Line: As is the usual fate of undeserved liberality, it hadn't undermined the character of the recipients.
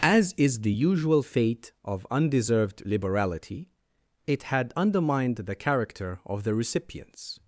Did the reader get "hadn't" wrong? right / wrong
wrong